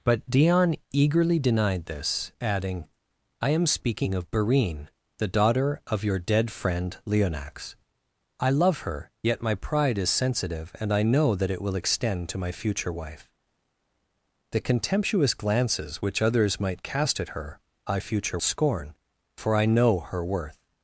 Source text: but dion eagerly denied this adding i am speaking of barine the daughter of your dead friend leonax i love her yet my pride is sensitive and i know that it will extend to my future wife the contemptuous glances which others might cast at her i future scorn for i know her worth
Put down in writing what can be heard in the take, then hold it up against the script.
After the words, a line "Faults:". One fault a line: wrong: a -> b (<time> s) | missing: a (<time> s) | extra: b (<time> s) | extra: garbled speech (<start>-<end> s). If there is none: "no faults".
but dion eagerly denied this adding i am speaking of barine the daughter of your dead friend leonax i love her yet my pride is sensitive and i know that it will extend to my future wife the contemptuous glances which others might cast at her i future scorn for i know her worth
Faults:
no faults